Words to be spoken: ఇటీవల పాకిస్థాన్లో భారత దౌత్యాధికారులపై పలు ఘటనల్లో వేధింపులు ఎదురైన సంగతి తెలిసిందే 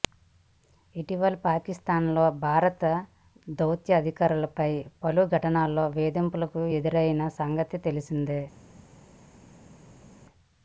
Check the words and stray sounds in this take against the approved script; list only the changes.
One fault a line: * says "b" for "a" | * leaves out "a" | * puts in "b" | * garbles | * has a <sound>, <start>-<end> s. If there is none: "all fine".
all fine